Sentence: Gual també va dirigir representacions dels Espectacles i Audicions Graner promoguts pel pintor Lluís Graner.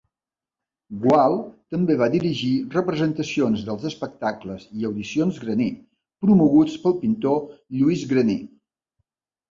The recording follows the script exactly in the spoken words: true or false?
true